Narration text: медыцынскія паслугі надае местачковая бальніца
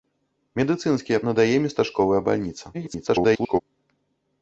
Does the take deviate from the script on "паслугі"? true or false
true